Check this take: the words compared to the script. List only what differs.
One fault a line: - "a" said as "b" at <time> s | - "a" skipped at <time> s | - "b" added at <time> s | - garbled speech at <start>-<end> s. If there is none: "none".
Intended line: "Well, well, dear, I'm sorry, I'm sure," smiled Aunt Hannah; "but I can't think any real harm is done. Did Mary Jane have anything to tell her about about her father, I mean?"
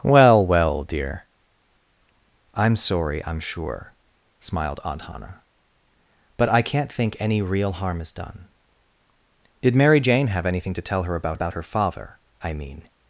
none